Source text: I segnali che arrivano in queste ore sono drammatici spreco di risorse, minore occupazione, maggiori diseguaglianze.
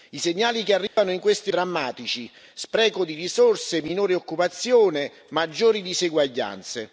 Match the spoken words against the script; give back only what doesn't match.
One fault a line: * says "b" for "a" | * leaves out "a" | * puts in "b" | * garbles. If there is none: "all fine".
* leaves out "ore sono"